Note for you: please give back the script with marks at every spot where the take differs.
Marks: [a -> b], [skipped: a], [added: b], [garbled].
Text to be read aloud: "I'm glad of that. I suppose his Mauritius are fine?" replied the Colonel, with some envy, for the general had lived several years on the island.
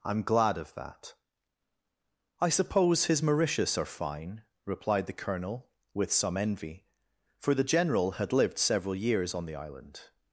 "I'm glad of that. I suppose his Mauritius are fine?" replied the Colonel, with some envy, for the general had lived several years on the island.